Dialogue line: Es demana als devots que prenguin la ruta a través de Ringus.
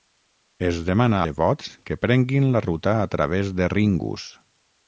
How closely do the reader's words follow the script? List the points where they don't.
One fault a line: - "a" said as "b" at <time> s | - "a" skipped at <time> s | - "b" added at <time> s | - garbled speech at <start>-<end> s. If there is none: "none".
- "als" skipped at 1.2 s